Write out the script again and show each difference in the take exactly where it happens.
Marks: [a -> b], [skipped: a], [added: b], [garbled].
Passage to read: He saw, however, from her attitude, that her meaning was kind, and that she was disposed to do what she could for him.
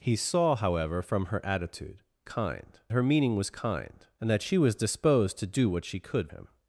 He saw, however, from her attitude, [that -> kind] her meaning was kind, and that she was disposed to do what she could [skipped: for] him.